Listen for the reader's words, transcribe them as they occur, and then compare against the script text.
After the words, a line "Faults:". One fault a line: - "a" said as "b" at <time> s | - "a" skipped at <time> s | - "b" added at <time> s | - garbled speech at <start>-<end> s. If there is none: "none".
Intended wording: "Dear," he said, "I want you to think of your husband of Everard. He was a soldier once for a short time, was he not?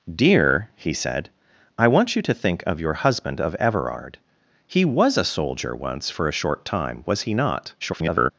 "Dear," he said, "I want you to think of your husband of Everard. He was a soldier once for a short time, was he not? [garbled]
Faults:
- garbled speech at 7.8-8.3 s